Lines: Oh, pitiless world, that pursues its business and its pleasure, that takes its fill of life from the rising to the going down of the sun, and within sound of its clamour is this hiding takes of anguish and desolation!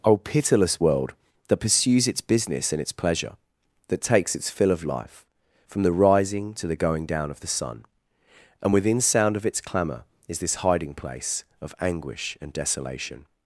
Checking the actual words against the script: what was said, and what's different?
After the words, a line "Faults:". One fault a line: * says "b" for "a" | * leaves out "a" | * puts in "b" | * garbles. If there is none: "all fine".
Oh, pitiless world, that pursues its business and its pleasure, that takes its fill of life from the rising to the going down of the sun, and within sound of its clamour is this hiding place of anguish and desolation!
Faults:
* says "place" for "takes"